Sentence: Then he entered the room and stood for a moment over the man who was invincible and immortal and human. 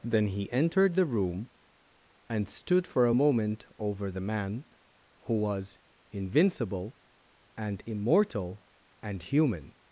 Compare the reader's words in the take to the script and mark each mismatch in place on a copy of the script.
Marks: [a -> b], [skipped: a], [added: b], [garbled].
Then he entered the room and stood for a moment over the man who was invincible and immortal and human.